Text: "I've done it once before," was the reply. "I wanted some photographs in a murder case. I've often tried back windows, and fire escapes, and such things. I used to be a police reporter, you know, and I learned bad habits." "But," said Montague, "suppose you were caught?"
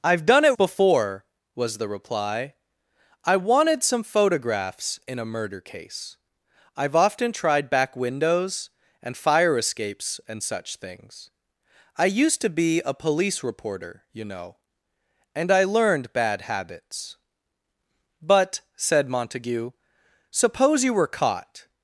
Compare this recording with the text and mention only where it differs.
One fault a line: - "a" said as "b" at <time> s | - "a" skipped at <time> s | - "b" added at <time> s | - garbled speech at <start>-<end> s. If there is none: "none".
- "once" skipped at 0.6 s